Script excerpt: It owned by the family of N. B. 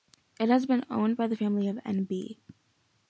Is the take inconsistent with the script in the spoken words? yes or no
yes